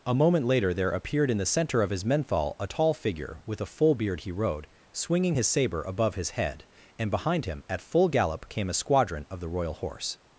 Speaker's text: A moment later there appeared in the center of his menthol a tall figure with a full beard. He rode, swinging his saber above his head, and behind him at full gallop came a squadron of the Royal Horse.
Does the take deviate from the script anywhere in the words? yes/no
no